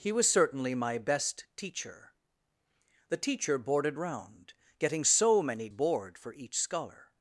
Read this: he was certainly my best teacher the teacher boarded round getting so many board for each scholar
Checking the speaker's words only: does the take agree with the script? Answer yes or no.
yes